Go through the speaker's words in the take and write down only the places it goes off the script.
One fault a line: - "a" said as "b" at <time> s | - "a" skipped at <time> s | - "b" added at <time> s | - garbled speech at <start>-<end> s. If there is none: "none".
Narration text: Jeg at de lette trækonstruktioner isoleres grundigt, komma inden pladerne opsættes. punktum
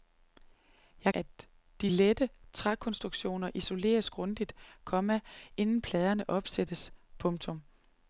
none